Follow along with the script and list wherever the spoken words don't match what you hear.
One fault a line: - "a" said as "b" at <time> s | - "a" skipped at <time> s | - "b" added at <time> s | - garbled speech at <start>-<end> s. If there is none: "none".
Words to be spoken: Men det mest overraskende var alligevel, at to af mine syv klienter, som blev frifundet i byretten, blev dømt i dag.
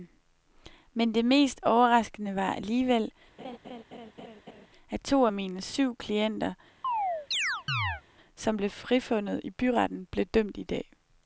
none